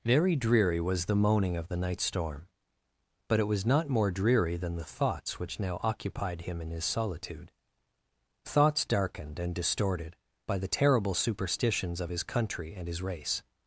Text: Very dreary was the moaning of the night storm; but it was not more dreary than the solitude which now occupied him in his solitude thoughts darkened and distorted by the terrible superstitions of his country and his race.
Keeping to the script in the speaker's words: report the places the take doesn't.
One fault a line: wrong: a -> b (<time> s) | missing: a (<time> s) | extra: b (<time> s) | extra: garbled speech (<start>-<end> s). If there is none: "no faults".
wrong: solitude -> thoughts (4.8 s)